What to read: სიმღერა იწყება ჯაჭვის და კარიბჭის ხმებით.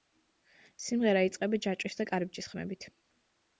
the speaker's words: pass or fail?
pass